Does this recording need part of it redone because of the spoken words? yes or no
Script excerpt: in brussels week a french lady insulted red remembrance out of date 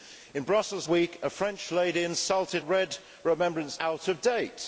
no